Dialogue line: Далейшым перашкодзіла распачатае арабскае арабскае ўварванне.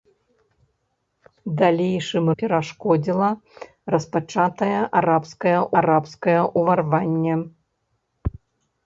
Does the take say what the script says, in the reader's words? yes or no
yes